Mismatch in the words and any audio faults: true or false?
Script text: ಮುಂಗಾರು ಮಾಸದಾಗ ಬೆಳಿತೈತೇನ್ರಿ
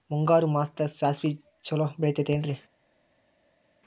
true